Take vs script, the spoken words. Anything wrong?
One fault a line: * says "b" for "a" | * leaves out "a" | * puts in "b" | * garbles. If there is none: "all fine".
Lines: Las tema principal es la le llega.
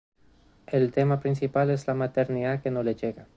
* says "El" for "Las"
* puts in "maternidad que no"